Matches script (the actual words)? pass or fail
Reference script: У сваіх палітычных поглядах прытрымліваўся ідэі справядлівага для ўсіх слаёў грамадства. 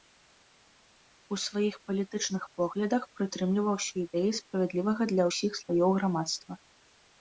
pass